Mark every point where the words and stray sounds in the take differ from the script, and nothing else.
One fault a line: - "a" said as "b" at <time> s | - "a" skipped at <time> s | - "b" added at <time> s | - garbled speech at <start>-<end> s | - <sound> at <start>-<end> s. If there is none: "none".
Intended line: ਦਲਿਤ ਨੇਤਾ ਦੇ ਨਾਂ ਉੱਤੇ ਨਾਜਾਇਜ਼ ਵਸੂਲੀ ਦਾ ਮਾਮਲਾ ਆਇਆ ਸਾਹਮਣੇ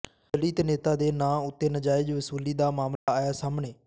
- dropout at 3.0-3.1 s